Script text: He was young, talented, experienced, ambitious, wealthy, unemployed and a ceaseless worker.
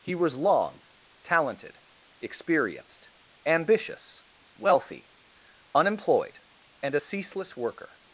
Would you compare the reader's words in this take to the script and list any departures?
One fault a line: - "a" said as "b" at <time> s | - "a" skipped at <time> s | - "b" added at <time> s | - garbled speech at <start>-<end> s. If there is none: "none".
- "young" said as "long" at 0.3 s